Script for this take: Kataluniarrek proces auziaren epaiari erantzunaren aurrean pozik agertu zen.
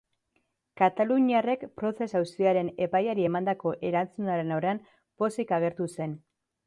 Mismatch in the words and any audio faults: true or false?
true